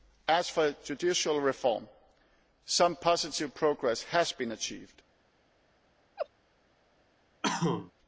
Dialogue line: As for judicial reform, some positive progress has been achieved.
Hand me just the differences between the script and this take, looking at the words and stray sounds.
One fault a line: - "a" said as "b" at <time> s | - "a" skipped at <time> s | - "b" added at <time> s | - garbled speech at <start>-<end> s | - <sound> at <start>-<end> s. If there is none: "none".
- laugh at 6.2-6.3 s
- cough at 7.4-7.9 s